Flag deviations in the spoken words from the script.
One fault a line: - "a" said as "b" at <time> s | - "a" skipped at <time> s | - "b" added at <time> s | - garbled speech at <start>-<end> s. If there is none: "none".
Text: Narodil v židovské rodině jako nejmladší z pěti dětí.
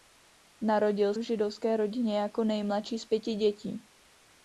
none